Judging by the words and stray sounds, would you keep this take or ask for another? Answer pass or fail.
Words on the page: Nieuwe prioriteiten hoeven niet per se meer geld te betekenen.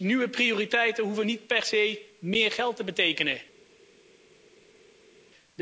pass